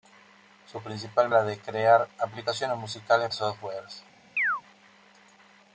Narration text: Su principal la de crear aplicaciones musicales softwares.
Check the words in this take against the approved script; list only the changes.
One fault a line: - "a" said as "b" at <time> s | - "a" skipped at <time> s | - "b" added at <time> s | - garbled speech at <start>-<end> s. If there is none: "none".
none